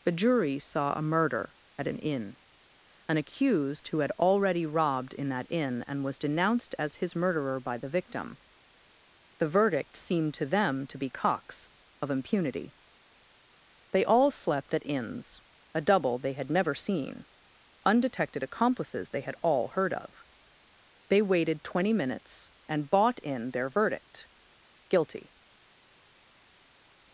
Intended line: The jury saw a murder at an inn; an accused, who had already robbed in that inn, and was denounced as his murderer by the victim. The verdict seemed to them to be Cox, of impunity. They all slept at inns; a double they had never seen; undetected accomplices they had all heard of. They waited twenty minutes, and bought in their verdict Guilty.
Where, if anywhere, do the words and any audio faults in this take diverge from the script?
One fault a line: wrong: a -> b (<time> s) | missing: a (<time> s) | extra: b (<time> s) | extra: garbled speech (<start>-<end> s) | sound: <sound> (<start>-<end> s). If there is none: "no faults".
no faults